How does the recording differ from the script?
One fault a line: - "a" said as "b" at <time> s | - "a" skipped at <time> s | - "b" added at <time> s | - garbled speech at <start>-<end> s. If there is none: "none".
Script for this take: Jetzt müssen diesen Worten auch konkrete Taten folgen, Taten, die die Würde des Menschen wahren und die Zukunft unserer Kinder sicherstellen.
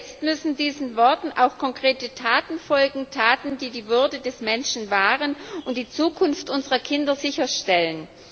none